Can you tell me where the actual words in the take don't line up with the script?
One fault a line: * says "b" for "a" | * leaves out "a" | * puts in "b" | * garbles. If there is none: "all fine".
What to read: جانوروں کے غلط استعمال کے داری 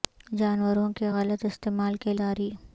all fine